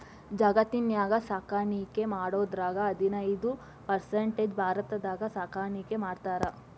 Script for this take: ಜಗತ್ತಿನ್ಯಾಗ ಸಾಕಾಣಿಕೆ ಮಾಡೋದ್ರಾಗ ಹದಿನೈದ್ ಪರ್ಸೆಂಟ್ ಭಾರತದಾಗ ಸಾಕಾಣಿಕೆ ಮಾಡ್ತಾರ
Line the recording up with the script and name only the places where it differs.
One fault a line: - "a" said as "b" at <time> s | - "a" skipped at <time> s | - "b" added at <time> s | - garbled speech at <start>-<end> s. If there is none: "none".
none